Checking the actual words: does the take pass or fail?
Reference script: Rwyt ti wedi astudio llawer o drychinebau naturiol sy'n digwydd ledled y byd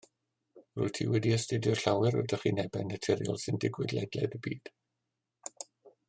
pass